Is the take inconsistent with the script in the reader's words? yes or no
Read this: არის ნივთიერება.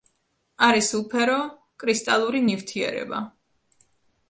yes